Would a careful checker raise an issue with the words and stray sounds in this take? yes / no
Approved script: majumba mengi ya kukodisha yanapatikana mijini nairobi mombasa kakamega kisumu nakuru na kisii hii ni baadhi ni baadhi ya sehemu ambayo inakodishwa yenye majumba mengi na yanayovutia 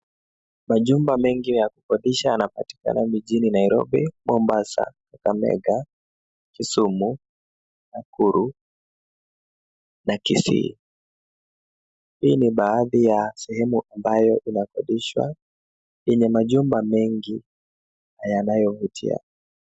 yes